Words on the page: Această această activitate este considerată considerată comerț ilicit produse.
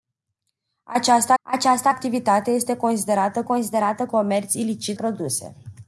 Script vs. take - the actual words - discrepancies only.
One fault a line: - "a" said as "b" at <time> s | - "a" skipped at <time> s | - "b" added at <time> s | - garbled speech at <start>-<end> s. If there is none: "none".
none